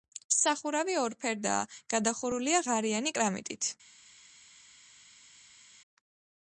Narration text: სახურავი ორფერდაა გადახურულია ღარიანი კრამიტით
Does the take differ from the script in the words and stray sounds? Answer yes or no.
no